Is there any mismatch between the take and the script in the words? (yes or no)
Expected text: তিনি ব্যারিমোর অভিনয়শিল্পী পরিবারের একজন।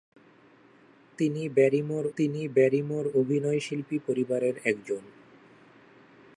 yes